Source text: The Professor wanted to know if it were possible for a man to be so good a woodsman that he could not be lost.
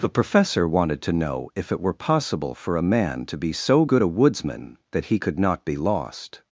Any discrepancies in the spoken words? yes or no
no